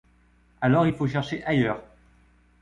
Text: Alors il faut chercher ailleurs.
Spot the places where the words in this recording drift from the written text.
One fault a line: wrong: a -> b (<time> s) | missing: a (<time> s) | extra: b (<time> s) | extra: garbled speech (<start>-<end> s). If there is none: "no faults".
no faults